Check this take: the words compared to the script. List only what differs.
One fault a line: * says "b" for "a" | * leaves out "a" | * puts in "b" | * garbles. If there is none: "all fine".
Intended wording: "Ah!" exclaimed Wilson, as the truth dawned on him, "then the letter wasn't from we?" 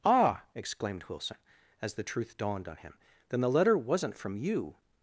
* says "you" for "we"